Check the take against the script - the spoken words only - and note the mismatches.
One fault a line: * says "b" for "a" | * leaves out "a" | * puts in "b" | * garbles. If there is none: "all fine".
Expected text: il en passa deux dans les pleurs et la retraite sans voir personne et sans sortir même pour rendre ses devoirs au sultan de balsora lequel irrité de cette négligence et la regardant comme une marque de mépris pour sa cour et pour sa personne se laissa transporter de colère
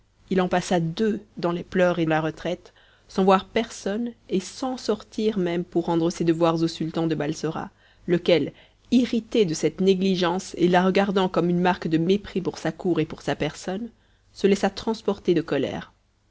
all fine